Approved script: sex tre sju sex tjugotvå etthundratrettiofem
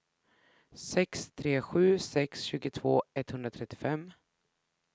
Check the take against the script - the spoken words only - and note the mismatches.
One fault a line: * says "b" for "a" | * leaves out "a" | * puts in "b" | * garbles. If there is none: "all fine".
all fine